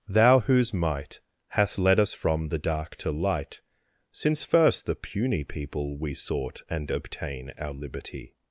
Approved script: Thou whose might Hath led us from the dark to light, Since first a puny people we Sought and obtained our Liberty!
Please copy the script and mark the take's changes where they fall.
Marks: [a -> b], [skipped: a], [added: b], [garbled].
Thou whose might Hath led us from the dark to light, Since first [a -> the] puny people we Sought and [obtained -> obtain] our Liberty!